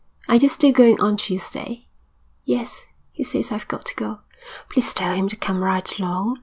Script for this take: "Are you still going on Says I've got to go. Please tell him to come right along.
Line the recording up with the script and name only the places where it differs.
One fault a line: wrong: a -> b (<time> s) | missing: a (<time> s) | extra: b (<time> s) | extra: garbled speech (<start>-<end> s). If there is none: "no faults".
extra: Tuesday Yes he (1.2 s)